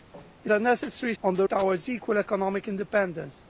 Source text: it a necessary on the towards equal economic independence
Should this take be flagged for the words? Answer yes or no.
no